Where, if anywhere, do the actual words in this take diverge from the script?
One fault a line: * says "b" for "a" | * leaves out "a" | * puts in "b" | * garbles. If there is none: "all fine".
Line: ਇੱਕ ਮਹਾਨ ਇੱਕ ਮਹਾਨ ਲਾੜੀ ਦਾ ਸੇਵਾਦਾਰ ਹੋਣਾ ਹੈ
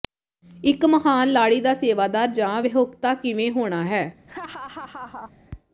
* leaves out "ਇੱਕ ਮਹਾਨ"
* puts in "ਜਾਂ ਵਿਆਹੁਤਾ ਕਿਵੇਂ"